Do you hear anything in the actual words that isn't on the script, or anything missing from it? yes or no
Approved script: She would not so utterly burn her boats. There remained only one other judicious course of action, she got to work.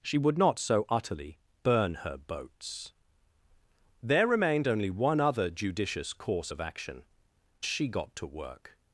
no